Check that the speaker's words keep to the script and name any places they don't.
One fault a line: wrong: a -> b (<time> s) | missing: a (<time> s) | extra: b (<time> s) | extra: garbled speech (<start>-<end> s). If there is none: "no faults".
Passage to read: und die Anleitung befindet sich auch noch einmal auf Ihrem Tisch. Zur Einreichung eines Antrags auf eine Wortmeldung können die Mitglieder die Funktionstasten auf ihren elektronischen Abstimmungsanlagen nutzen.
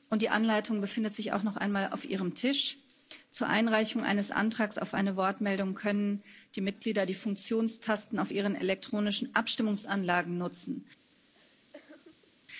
no faults